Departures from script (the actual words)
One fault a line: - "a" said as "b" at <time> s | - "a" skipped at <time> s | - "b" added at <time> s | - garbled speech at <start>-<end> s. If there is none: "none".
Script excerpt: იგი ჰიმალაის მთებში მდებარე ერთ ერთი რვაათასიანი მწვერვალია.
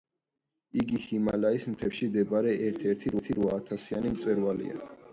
- "ერთი" added at 3.2 s